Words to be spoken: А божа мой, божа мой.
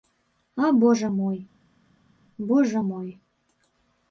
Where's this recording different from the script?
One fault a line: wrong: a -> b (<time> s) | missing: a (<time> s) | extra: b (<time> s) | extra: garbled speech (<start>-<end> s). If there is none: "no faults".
no faults